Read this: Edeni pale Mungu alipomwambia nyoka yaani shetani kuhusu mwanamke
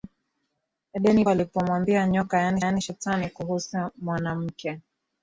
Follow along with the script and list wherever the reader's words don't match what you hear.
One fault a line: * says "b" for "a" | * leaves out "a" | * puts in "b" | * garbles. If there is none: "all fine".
* leaves out "pale Mungu"
* puts in "yaani"